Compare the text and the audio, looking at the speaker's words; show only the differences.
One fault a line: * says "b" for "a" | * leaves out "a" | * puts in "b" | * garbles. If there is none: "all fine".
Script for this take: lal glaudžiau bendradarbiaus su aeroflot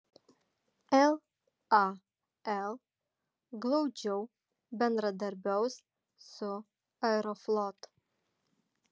all fine